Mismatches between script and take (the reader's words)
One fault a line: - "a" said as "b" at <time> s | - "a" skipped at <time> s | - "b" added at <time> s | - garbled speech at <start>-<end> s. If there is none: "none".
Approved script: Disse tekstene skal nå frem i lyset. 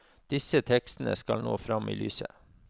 none